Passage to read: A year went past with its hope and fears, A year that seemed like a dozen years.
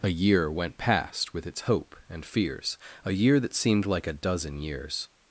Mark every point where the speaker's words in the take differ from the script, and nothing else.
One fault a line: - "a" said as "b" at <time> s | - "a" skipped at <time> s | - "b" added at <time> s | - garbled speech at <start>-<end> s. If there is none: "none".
none